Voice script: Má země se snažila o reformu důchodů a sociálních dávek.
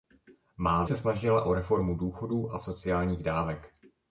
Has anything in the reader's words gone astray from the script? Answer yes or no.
yes